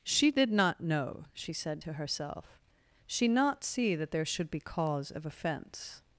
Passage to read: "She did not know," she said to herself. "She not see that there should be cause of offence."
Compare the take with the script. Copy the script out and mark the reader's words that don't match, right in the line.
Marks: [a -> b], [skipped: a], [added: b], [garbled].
"She did not know," she said to herself. "She not see that there should be cause of offence."